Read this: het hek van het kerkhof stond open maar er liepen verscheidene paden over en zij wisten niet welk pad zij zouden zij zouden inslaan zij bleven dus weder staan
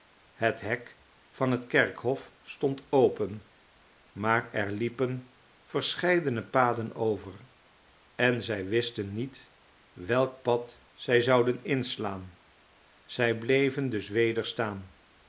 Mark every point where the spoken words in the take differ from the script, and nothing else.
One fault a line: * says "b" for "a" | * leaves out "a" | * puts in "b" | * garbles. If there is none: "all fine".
* leaves out "zij zouden"